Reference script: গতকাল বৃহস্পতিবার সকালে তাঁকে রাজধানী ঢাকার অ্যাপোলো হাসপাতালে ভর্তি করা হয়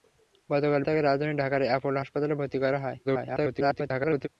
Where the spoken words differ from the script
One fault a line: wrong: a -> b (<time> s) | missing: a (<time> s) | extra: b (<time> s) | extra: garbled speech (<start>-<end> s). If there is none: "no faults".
missing: বৃহস্পতিবার সকালে (0.8 s)
extra: garbled speech (3.0-4.3 s)